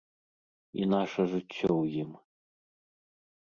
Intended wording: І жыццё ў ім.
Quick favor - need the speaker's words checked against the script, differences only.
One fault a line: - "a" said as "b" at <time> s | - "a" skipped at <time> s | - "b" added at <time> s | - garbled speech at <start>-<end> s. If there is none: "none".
- "наша" added at 0.9 s